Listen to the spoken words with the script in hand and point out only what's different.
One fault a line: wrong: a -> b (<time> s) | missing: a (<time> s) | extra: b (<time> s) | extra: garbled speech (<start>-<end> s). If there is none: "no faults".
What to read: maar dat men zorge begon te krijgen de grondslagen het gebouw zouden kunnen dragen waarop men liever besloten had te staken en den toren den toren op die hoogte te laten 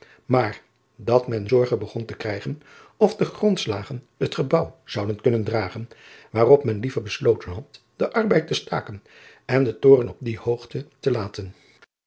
extra: of (3.0 s)
extra: den arbeid (8.0 s)
missing: den toren (10.1 s)